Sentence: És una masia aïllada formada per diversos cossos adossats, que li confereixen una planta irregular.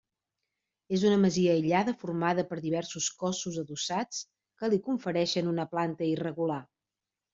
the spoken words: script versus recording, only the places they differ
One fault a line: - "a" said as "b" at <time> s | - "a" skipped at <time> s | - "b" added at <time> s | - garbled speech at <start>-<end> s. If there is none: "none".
none